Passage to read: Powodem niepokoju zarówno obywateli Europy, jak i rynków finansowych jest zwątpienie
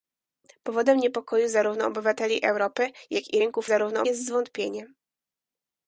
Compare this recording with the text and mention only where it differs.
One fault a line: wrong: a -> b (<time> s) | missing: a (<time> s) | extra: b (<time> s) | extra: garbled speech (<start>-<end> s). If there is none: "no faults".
wrong: finansowych -> zarówno (3.6 s)